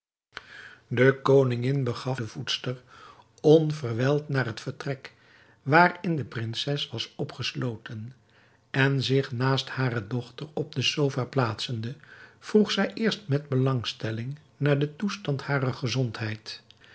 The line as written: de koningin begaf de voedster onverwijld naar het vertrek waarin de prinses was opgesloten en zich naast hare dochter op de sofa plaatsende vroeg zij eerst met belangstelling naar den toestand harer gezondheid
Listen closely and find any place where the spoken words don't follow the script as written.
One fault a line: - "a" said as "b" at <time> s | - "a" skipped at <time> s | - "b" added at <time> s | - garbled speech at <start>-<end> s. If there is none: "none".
none